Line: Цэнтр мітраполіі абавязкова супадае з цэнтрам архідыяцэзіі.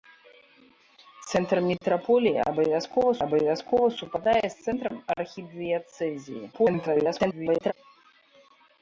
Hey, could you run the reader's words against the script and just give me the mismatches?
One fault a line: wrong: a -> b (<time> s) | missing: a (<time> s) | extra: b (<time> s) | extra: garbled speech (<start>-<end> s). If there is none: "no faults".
extra: абавязкова (3.3 s)
extra: garbled speech (6.5-7.7 s)